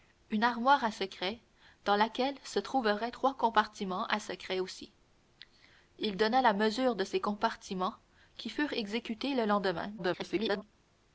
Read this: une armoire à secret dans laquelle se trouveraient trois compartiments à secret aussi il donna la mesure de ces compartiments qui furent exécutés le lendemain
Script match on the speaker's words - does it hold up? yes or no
no